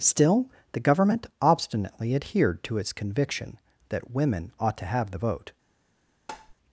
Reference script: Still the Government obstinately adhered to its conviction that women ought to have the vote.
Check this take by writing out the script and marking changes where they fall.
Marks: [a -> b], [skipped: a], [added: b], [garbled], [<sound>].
Still the Government obstinately adhered to its conviction that women ought to have the vote. [tap]